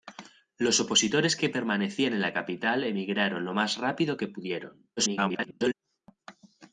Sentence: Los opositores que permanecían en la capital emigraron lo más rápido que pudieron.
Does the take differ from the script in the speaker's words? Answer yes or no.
yes